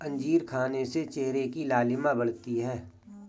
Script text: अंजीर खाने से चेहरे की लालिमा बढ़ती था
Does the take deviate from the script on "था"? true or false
true